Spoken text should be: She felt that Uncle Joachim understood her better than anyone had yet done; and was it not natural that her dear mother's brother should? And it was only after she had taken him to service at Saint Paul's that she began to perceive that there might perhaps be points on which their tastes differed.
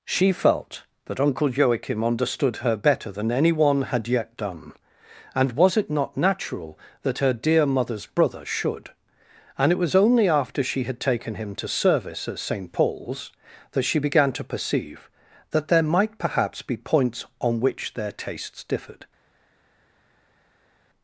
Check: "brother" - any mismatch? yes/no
no